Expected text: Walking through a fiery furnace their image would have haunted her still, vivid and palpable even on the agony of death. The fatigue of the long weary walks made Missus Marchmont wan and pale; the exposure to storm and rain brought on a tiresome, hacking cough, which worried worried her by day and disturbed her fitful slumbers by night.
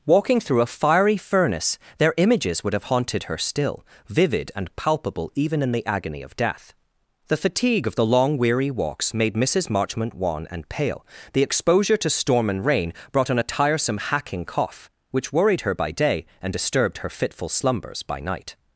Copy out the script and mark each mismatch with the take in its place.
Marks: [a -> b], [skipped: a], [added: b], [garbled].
Walking through a fiery furnace their [image -> images] would have haunted her still, vivid and palpable even [on -> in] the agony of death. The fatigue of the long weary walks made Missus Marchmont wan and pale; the exposure to storm and rain brought on a tiresome, hacking cough, which worried [skipped: worried] her by day and disturbed her fitful slumbers by night.